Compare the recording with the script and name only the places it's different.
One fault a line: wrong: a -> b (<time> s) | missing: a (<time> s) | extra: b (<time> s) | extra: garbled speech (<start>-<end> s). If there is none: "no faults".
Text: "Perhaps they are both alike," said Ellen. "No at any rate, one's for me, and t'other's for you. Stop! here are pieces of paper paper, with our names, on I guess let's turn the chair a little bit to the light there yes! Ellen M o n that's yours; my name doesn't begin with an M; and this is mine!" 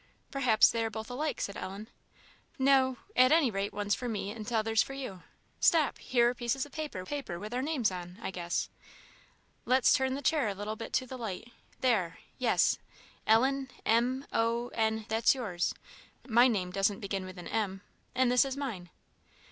no faults